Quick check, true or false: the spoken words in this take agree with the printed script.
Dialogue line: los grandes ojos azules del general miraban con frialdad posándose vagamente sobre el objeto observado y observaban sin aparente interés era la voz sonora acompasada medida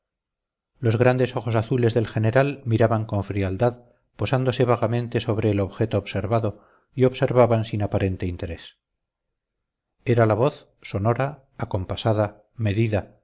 true